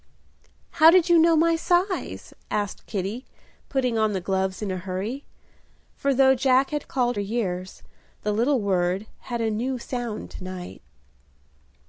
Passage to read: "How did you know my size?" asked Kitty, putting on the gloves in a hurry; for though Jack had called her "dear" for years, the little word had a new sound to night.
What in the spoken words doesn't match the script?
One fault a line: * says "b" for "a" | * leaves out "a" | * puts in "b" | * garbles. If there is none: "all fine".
* leaves out "her dear for"